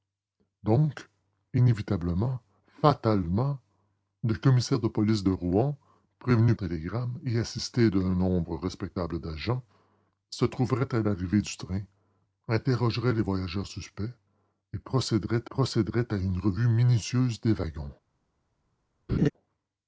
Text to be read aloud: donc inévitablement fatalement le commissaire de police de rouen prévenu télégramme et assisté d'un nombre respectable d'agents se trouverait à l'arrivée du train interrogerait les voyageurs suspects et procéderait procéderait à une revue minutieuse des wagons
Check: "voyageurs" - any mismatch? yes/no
no